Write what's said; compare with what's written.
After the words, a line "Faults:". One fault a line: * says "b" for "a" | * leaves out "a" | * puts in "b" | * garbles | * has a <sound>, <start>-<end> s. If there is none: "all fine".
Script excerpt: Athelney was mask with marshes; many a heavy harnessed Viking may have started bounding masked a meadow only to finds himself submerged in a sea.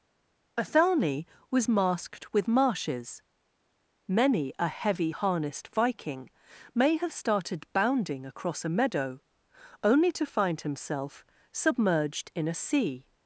Athelney was masked with marshes; many a heavy harnessed Viking may have started bounding across a meadow only to find himself submerged in a sea.
Faults:
* says "masked" for "mask"
* says "across" for "masked"
* says "find" for "finds"